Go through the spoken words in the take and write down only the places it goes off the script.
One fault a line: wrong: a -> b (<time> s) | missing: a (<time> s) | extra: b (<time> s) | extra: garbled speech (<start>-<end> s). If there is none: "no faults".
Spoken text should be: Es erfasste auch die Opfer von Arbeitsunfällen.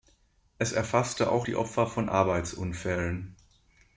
no faults